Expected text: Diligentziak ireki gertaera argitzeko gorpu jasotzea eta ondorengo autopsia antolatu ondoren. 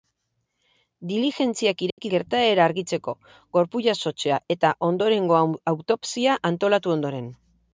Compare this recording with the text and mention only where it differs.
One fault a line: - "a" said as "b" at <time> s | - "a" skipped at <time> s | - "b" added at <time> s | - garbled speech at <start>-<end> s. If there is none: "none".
none